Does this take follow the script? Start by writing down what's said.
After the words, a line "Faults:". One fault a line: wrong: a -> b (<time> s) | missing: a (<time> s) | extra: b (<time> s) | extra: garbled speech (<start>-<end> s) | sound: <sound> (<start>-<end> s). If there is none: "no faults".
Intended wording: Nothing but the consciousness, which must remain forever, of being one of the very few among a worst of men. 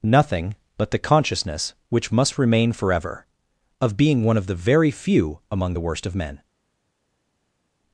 Nothing but the consciousness, which must remain forever, of being one of the very few among the worst of men.
Faults:
wrong: a -> the (5.7 s)